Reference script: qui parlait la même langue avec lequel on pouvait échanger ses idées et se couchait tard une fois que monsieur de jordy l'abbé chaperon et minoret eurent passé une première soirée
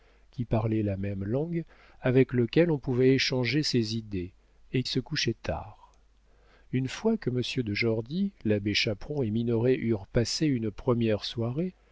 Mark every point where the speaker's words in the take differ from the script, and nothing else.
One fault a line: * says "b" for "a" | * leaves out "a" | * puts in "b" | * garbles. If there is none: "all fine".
all fine